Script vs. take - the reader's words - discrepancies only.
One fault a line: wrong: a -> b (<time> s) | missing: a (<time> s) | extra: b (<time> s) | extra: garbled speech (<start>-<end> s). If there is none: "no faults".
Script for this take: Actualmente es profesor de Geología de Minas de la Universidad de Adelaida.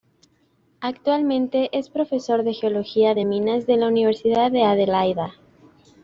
no faults